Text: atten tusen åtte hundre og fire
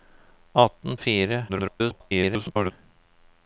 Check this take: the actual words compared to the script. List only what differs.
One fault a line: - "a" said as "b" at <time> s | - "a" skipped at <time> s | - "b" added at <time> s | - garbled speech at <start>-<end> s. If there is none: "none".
- "tusen åtte hundre" skipped at 1.0 s
- garbled speech at 1.5-2.7 s